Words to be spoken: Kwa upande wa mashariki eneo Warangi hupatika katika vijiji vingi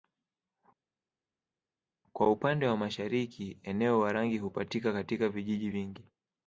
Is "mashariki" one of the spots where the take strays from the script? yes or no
no